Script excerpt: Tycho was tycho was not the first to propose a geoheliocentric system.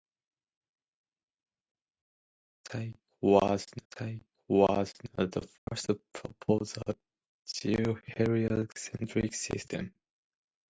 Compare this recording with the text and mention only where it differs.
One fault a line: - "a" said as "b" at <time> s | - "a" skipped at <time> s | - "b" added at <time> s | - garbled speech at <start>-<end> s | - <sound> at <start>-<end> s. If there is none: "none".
- dropout at 5.6-5.7 s